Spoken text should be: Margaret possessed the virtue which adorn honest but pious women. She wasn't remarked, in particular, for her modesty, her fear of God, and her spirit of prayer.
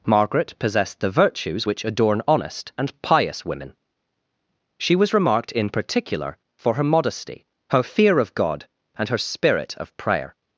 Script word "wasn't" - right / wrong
wrong